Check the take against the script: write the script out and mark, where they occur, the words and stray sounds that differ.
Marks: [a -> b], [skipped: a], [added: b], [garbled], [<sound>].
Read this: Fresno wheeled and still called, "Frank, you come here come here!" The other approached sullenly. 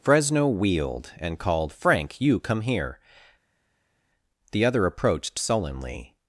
Fresno wheeled and [skipped: still] called, "Frank, you come here [skipped: come here!"] The other approached sullenly.